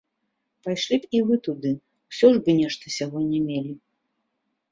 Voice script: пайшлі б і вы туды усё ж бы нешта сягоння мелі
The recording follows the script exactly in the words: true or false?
true